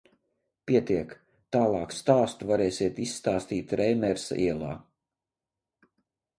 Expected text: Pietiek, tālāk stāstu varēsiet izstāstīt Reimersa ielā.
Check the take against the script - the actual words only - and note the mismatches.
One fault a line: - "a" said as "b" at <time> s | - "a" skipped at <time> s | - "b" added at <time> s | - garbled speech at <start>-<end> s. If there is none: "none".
none